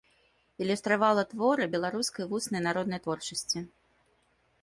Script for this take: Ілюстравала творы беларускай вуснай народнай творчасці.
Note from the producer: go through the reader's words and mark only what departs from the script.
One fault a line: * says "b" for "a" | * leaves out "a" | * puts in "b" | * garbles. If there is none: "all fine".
all fine